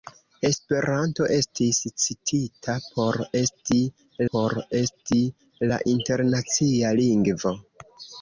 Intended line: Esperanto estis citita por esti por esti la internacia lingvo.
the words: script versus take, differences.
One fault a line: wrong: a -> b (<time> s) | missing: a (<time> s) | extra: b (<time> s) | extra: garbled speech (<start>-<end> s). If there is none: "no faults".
no faults